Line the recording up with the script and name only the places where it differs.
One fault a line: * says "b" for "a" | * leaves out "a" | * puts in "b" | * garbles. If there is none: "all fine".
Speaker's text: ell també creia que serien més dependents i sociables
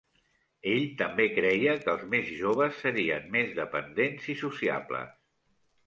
* puts in "els més joves"